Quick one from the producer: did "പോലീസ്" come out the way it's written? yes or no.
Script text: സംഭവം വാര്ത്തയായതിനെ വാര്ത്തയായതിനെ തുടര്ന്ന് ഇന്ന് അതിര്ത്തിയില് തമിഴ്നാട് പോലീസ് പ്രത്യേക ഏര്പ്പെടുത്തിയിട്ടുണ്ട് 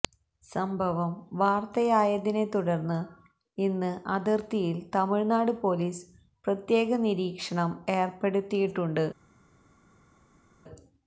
yes